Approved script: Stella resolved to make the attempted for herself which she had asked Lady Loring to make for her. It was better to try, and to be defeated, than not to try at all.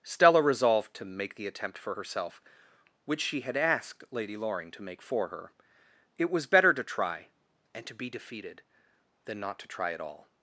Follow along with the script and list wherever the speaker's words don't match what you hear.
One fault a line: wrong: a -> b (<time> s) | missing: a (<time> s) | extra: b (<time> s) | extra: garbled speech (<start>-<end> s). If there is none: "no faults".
wrong: attempted -> attempt (1.5 s)